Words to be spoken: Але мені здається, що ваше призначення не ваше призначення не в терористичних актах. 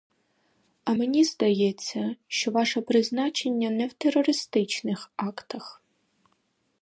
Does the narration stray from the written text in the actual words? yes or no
yes